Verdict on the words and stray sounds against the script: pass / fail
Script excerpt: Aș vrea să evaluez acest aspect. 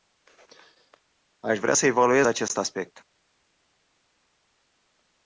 pass